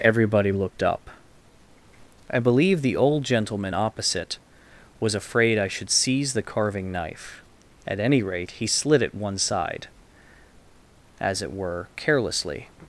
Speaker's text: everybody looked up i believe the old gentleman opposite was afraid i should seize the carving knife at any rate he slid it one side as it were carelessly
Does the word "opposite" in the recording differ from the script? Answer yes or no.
no